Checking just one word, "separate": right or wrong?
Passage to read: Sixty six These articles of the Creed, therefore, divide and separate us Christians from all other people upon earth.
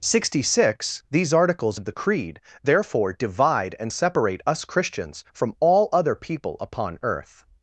right